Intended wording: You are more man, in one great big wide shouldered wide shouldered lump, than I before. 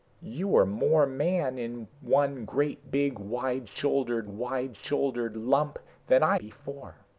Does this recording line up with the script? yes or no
yes